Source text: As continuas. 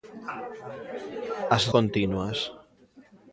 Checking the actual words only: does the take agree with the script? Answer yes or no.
yes